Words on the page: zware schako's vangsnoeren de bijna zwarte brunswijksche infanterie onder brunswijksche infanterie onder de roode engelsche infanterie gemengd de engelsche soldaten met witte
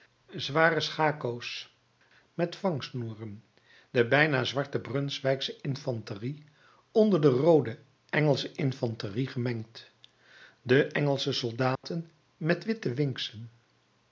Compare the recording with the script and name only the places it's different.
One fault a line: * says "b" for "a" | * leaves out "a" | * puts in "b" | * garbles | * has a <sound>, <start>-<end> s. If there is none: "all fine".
* puts in "met"
* leaves out "brunswijksche infanterie onder"
* has a dropout, 11.7-11.8 s